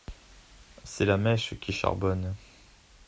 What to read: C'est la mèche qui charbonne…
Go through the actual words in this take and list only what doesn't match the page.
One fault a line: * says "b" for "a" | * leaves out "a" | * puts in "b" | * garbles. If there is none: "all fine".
all fine